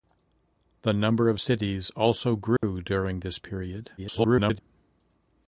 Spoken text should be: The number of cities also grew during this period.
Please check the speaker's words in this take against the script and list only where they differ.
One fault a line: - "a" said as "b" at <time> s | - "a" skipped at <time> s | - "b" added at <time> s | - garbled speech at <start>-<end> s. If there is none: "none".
- garbled speech at 4.0-4.6 s